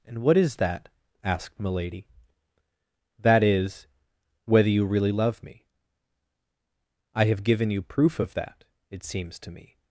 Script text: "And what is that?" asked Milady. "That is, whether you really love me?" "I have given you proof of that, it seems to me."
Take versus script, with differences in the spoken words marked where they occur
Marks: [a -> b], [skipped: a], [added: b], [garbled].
"And what is that?" asked Milady. "That is, whether you really love me?" "I have given you proof of that, it seems to me."